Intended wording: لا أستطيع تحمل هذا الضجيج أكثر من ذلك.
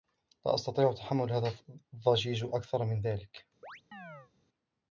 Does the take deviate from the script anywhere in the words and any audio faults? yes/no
yes